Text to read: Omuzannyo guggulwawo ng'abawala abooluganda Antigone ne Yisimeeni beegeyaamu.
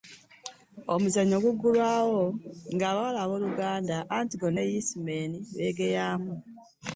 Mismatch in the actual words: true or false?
false